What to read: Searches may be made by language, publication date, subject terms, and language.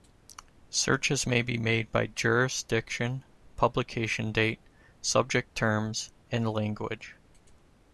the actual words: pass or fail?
fail